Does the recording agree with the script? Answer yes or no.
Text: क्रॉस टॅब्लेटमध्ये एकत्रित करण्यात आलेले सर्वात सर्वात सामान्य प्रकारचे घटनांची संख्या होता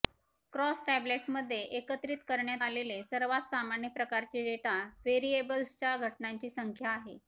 no